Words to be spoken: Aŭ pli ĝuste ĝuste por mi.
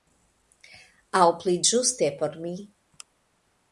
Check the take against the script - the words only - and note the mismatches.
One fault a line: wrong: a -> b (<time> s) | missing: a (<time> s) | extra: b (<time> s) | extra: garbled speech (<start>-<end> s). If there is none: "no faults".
missing: ĝuste (2.1 s)